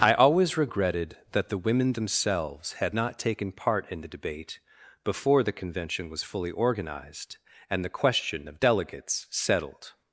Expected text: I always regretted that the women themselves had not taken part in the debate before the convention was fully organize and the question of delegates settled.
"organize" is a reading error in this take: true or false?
true